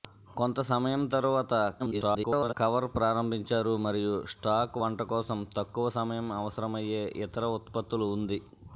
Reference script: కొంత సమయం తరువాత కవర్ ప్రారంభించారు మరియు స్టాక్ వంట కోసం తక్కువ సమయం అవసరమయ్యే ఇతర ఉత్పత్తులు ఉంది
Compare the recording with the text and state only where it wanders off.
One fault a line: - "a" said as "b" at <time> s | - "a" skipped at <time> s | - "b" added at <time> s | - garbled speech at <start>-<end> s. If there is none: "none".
- garbled speech at 1.8-2.5 s